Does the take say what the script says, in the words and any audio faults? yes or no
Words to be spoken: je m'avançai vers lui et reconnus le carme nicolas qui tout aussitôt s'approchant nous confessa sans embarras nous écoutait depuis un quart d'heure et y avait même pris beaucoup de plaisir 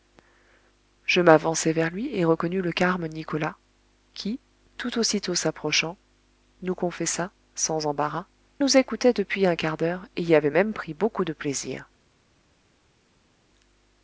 yes